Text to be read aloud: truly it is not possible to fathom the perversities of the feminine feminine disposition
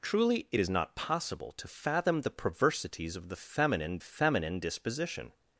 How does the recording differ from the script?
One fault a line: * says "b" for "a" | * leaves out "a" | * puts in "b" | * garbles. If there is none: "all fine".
all fine